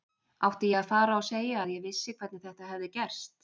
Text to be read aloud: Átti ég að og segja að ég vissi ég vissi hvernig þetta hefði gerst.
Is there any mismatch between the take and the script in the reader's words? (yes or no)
yes